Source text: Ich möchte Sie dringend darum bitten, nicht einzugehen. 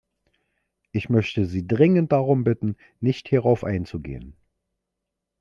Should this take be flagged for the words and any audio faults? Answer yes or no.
yes